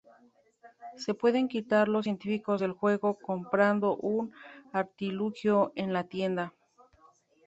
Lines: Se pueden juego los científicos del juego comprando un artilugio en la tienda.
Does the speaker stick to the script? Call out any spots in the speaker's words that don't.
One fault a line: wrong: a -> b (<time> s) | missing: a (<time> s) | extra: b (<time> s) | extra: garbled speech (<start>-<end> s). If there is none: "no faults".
wrong: juego -> quitar (1.5 s)